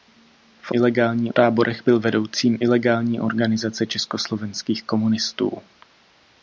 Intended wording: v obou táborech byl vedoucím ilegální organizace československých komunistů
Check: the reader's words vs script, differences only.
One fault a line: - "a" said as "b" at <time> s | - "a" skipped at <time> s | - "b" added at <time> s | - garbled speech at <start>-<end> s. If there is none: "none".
- "obou" said as "ilegální" at 0.7 s